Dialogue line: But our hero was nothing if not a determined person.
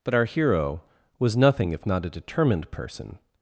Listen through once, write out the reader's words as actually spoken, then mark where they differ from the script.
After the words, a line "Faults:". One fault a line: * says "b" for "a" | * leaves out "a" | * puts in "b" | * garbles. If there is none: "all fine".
But our hero was nothing if not a determined person.
Faults:
all fine